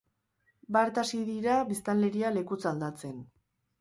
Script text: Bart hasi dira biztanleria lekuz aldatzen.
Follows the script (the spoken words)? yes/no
yes